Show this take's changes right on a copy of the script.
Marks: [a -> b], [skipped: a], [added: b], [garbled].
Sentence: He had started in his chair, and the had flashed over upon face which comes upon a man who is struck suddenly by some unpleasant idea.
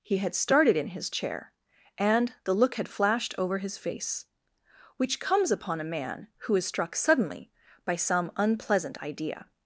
He had started in his chair, and the [added: look] had flashed over [upon -> his] face which comes upon a man who is struck suddenly by some unpleasant idea.